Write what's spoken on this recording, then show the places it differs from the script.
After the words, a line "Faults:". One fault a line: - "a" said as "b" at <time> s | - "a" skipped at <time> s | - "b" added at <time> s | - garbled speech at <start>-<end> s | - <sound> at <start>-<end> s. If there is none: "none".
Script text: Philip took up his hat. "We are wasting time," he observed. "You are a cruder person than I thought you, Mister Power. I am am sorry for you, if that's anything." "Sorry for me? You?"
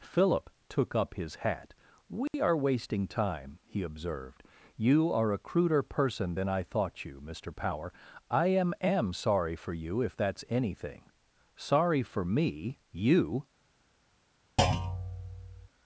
Philip took up his hat. "We are wasting time," he observed. "You are a cruder person than I thought you, Mister Power. I am am sorry for you, if that's anything." "Sorry for me? You?"
Faults:
- dropout at 2.3-2.3 s
- thud at 14.6-15.7 s